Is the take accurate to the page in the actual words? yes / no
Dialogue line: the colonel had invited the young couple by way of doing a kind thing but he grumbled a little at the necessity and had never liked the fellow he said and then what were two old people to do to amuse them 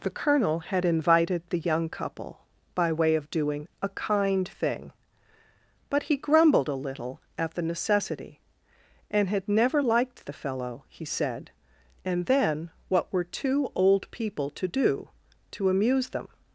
yes